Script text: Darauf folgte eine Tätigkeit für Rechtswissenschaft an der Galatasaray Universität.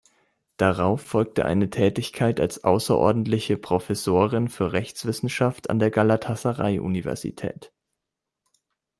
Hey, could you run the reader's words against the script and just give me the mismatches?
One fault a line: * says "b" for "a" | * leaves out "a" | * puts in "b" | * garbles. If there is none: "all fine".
* puts in "als außerordentliche Professorin"